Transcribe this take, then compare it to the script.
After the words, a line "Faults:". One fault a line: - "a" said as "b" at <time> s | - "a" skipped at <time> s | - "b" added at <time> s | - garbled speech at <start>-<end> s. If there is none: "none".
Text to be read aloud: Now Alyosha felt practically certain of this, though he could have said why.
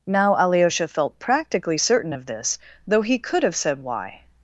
Now Alyosha felt practically certain of this, though he could have said why.
Faults:
none